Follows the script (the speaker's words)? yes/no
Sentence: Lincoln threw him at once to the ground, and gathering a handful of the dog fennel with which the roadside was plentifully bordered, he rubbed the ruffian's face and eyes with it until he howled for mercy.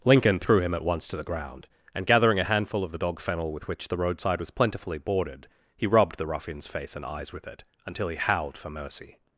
yes